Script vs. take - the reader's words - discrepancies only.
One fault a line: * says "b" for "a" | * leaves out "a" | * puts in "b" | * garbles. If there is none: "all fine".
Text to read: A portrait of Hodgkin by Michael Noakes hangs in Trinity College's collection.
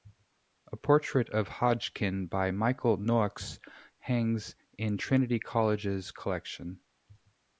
all fine